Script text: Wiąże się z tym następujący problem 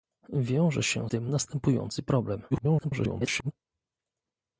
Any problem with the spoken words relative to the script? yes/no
yes